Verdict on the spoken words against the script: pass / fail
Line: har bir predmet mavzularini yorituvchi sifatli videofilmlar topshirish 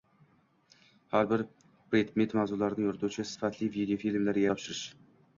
pass